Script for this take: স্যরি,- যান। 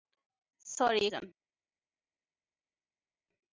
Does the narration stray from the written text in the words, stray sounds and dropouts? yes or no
no